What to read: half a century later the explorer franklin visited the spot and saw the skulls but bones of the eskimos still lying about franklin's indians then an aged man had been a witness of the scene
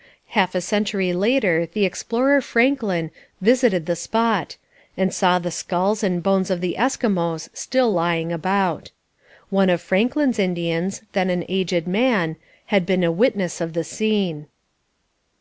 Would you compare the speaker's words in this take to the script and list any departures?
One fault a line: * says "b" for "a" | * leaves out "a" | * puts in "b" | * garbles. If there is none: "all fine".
* says "and" for "but"
* puts in "one of"